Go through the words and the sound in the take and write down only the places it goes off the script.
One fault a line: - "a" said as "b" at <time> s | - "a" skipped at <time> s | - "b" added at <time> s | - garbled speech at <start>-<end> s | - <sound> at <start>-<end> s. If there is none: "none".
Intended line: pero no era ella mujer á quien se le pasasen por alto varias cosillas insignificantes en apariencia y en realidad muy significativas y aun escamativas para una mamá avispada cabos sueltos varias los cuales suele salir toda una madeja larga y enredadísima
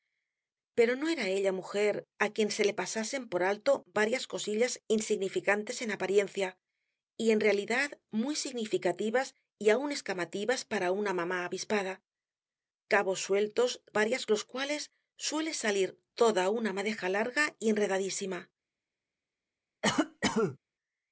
- cough at 19.8-20.6 s